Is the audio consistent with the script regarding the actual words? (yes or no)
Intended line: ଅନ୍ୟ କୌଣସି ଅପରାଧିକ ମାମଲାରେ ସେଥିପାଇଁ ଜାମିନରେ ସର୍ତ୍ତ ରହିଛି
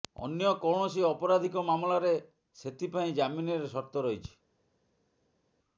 yes